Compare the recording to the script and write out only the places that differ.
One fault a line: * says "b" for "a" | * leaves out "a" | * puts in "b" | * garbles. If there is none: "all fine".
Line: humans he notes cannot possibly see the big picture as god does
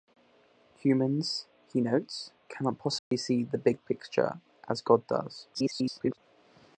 * garbles